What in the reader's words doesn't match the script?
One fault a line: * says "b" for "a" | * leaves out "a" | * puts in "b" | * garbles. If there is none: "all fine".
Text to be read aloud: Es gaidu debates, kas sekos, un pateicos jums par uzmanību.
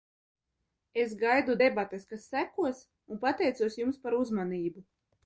all fine